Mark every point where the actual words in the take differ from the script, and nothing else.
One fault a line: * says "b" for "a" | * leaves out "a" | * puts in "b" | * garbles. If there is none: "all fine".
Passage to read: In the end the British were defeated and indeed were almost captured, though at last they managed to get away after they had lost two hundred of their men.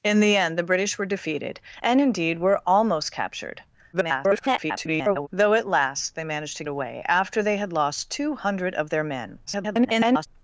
* garbles
* leaves out "get"
* garbles